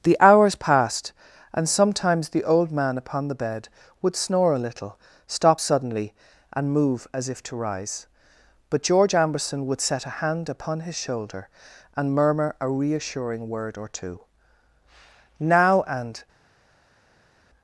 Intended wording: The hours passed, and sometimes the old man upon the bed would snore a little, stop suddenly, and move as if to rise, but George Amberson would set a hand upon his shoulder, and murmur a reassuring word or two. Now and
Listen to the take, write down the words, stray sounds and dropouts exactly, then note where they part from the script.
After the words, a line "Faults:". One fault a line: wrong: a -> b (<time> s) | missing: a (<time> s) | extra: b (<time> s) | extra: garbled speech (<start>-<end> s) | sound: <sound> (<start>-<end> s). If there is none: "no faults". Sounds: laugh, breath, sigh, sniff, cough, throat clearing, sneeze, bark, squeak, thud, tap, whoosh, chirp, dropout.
The hours passed, and sometimes the old man upon the bed would snore a little, stop suddenly, and move as if to rise, but George Amberson would set a hand upon his shoulder, and murmur a reassuring word or two. Now and
Faults:
no faults